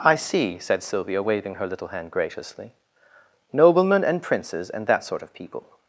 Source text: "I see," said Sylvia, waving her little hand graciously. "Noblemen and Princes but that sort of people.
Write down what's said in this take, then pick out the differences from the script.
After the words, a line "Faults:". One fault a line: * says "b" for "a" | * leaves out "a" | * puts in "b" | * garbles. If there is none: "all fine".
"I see," said Sylvia, waving her little hand graciously. "Noblemen and Princes and that sort of people.
Faults:
* says "and" for "but"